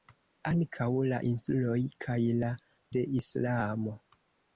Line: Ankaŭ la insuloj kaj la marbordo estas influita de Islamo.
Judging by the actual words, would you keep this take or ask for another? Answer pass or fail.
fail